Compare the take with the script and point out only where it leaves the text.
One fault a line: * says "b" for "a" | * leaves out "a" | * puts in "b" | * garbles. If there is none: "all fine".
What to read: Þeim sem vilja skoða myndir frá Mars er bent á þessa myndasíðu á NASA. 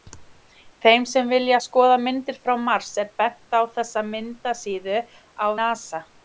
all fine